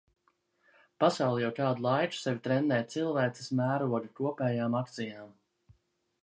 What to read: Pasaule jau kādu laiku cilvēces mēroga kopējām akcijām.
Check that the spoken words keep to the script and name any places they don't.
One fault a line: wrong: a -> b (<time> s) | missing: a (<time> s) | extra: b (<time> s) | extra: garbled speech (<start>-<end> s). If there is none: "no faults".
extra: sevi trenē (2.2 s)